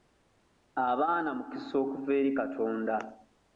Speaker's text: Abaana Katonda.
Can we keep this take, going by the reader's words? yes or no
no